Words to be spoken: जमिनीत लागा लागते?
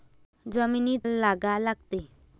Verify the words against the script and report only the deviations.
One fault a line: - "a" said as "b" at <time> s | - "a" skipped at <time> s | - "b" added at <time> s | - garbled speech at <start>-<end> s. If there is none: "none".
none